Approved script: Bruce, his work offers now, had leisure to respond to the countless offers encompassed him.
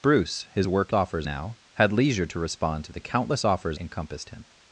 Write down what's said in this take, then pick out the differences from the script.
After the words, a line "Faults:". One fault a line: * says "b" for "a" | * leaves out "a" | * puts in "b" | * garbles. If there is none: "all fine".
Bruce, his work offers now, had leisure to respond to the countless offers encompassed him.
Faults:
all fine